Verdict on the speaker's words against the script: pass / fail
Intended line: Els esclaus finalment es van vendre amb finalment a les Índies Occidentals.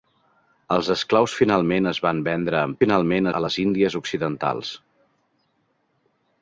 pass